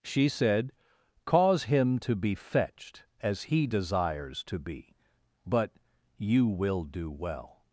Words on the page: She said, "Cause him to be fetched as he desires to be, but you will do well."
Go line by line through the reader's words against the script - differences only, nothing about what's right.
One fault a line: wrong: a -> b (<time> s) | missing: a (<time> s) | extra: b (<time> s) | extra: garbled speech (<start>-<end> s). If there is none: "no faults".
no faults